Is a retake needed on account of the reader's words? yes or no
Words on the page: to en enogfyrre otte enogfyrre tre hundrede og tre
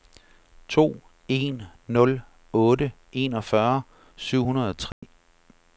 yes